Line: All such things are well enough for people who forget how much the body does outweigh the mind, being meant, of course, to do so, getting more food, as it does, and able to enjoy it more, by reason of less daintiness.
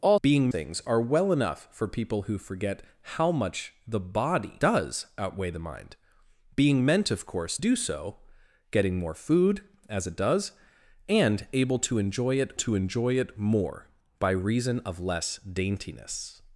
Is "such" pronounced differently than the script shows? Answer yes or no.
yes